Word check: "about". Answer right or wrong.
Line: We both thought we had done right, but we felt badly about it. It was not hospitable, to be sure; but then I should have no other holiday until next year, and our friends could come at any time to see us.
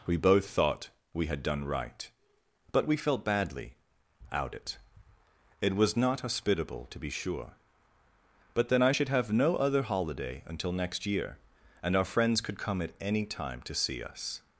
wrong